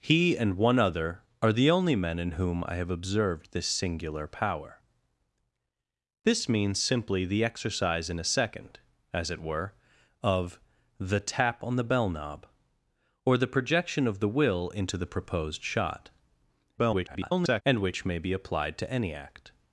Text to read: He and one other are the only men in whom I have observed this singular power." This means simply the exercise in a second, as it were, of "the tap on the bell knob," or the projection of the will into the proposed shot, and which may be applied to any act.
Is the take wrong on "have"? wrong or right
right